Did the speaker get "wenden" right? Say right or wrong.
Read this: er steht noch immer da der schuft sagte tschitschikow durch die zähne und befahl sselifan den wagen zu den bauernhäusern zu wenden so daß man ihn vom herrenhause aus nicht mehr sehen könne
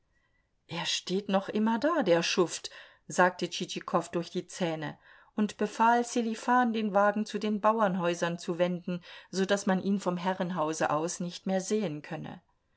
right